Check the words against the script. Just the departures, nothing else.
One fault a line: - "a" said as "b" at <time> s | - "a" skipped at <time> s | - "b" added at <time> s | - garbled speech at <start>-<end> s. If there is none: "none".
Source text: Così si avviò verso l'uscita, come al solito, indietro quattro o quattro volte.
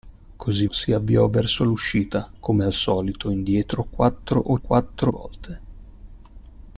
none